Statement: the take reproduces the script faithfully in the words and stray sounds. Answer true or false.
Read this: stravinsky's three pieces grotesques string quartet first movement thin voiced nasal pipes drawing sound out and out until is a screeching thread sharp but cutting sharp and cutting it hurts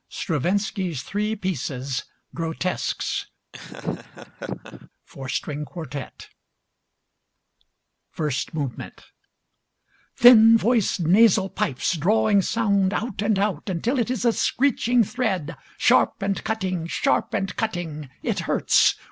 false